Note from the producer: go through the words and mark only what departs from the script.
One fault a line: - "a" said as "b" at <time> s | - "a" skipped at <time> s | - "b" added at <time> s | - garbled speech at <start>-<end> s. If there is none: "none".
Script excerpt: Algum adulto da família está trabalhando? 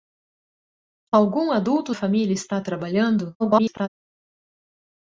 - "da" skipped at 1.9 s
- garbled speech at 3.4-3.9 s